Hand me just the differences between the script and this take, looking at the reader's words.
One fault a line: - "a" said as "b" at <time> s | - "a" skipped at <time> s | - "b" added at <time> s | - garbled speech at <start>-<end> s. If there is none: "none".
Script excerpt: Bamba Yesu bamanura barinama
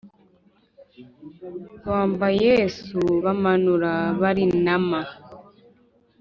none